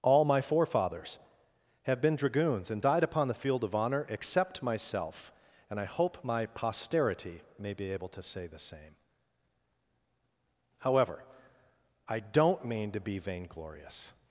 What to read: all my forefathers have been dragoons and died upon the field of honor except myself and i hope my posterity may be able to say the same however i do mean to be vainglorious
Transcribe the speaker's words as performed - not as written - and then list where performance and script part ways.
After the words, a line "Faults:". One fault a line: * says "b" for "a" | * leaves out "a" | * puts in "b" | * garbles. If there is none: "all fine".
all my forefathers have been dragoons and died upon the field of honor except myself and i hope my posterity may be able to say the same however i don't mean to be vainglorious
Faults:
* says "don't" for "do"